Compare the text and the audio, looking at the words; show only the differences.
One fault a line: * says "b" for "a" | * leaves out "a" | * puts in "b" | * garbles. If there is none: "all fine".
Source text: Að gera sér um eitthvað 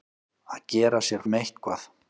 all fine